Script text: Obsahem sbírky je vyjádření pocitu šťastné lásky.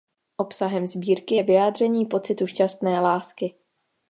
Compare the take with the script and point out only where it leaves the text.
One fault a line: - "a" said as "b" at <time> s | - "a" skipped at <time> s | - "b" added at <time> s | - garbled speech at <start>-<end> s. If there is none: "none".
none